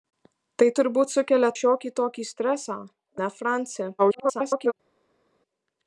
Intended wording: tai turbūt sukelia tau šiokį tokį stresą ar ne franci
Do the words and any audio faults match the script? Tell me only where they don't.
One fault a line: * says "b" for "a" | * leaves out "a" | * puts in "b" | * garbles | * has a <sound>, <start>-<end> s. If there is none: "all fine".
* leaves out "tau"
* leaves out "ar"
* garbles